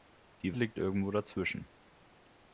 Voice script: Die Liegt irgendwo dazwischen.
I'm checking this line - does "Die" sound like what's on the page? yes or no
yes